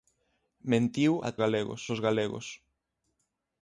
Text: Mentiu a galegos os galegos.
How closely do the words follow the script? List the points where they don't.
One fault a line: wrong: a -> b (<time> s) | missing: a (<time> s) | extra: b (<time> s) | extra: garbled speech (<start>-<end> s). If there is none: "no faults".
no faults